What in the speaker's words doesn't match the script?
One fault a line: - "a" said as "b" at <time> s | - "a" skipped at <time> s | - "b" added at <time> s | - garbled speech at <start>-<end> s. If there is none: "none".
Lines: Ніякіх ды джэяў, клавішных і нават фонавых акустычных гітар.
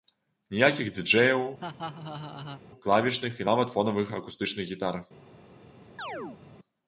none